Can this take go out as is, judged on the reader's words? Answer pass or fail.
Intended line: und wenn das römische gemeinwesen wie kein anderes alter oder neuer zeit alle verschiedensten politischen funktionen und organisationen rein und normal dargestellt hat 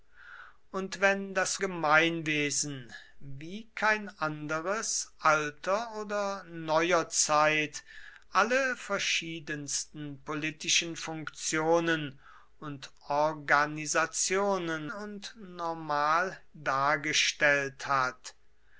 fail